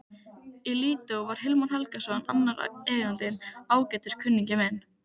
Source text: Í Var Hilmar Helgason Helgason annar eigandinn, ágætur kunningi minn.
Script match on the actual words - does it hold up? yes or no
no